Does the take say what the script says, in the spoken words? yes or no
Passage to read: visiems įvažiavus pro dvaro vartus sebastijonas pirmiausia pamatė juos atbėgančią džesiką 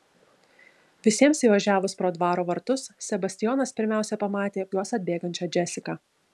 yes